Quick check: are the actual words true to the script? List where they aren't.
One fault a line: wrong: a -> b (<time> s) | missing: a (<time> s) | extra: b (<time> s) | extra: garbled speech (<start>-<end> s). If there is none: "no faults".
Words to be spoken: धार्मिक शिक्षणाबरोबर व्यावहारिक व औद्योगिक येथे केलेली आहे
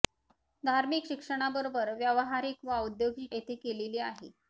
no faults